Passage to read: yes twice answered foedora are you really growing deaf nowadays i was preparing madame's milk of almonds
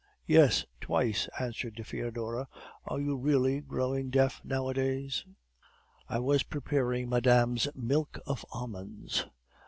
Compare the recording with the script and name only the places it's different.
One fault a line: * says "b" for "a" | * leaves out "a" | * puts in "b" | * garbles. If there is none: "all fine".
all fine